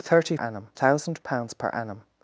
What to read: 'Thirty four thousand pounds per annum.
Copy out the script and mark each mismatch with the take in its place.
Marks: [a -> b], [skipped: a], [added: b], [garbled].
'Thirty [four -> annum] thousand pounds per annum.